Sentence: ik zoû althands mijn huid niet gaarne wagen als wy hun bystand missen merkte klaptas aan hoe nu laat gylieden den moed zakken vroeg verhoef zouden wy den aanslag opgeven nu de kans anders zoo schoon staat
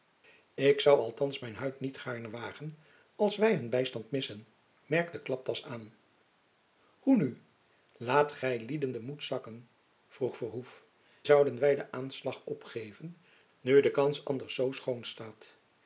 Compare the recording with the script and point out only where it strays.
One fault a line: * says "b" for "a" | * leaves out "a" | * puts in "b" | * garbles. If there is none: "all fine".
all fine